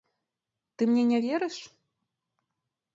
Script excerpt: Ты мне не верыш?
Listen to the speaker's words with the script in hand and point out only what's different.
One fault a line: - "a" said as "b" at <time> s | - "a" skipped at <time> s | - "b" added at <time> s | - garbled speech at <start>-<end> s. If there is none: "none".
none